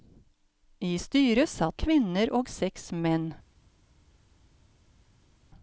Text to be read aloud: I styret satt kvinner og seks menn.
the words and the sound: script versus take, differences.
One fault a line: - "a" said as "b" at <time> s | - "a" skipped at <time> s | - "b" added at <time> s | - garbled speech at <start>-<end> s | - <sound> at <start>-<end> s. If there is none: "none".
none